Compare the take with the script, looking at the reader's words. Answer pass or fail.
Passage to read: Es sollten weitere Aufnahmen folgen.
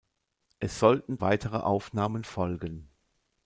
pass